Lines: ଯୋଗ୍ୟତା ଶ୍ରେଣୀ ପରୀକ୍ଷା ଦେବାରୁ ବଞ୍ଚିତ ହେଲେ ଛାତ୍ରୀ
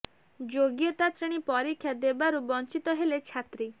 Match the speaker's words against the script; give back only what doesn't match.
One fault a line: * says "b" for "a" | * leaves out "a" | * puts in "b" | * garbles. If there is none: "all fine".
all fine